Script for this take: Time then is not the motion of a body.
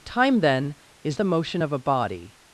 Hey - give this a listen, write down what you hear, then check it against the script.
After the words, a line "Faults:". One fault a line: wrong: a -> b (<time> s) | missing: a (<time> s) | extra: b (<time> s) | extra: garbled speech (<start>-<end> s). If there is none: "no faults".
Time then is the motion of a body.
Faults:
missing: not (1.2 s)